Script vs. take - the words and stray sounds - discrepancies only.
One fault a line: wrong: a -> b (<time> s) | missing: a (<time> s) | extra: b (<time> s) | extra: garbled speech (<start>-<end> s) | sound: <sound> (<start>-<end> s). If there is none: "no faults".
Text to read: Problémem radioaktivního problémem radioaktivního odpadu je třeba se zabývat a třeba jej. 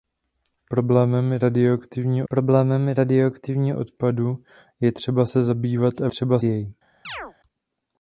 sound: chirp (7.0-7.3 s)